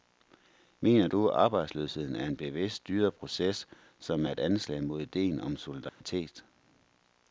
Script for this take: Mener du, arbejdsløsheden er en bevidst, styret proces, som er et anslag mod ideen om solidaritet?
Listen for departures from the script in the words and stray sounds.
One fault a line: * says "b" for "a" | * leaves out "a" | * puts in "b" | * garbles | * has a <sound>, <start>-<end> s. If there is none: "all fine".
* has a dropout, 5.9-6.0 s